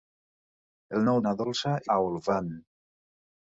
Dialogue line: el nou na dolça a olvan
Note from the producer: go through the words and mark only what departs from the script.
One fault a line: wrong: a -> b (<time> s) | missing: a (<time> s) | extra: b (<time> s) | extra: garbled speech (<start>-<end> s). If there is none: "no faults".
no faults